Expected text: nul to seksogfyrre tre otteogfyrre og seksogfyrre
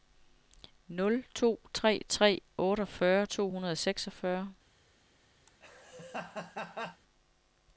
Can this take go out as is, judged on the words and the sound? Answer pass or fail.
fail